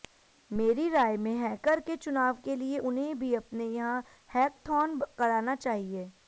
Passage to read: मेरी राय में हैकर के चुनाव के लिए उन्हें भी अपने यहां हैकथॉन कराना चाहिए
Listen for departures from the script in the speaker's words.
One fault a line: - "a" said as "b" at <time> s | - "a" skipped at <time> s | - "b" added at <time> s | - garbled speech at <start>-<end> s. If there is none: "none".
none